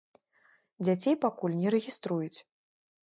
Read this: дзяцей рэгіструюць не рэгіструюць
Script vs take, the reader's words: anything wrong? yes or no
yes